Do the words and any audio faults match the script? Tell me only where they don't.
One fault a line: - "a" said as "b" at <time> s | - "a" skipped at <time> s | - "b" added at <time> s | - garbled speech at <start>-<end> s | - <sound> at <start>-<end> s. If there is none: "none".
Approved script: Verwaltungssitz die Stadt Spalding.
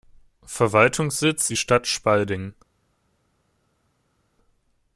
none